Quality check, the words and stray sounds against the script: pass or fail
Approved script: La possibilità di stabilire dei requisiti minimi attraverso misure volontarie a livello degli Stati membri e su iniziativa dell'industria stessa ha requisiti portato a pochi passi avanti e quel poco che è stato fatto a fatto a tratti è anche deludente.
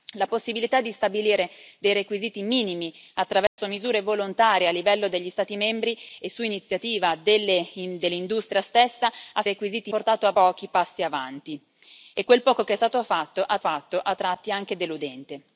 fail